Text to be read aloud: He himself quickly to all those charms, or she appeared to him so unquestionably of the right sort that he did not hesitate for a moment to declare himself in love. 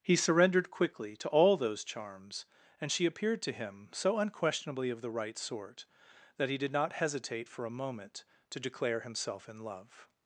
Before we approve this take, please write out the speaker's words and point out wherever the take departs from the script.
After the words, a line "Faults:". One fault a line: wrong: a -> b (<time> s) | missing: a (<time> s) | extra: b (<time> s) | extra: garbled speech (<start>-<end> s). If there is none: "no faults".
He surrendered quickly to all those charms, and she appeared to him so unquestionably of the right sort that he did not hesitate for a moment to declare himself in love.
Faults:
wrong: himself -> surrendered (0.1 s)
wrong: or -> and (2.8 s)